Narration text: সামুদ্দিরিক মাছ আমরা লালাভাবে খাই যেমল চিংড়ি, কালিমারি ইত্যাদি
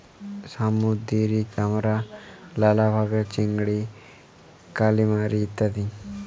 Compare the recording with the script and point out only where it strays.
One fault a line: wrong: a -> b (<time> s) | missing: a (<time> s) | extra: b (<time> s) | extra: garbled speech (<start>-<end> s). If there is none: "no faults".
missing: মাছ (1.5 s)
missing: খাই যেমল (3.2 s)